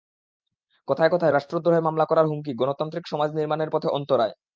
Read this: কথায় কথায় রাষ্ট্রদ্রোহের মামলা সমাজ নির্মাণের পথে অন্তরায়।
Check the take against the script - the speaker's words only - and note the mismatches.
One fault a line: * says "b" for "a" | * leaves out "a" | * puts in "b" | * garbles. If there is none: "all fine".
* puts in "করার হুমকি গণতান্ত্রিক"